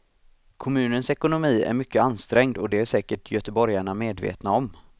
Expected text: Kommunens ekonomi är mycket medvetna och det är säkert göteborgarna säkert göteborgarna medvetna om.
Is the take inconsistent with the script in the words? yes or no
yes